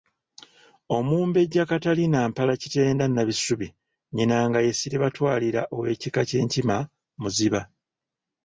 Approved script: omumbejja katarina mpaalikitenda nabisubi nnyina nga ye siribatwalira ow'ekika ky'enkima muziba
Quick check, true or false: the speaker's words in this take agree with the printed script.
true